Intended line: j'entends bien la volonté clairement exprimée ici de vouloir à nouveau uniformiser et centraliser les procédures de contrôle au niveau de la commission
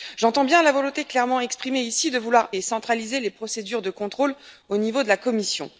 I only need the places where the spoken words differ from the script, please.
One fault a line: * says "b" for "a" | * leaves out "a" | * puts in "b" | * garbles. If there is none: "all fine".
* leaves out "à nouveau uniformiser"